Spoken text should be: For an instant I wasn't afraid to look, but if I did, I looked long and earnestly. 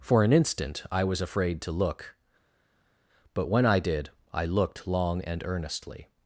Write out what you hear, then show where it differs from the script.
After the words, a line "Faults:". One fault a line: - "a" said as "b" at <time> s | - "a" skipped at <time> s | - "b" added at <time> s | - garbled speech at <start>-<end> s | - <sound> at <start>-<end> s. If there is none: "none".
For an instant I was afraid to look, but when I did, I looked long and earnestly.
Faults:
- "wasn't" said as "was" at 1.0 s
- "if" said as "when" at 3.5 s